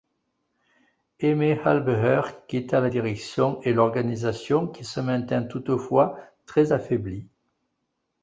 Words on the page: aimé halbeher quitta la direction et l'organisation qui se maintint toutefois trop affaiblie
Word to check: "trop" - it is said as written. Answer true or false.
false